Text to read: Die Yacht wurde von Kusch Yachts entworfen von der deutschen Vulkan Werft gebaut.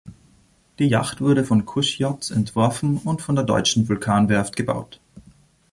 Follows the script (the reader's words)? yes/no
no